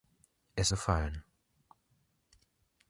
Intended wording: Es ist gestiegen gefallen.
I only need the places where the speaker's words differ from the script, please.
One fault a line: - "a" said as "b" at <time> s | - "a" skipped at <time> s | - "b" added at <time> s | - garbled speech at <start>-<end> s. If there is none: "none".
- "ist gestiegen" skipped at 0.7 s